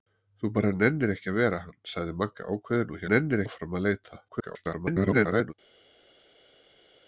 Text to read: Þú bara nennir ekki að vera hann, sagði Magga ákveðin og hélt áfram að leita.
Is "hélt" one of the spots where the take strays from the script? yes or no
yes